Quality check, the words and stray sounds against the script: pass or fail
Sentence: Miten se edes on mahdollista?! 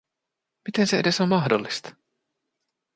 pass